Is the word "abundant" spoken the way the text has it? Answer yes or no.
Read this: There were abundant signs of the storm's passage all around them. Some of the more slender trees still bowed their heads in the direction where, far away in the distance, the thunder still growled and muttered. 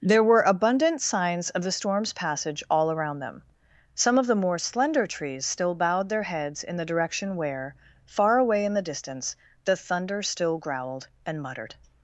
yes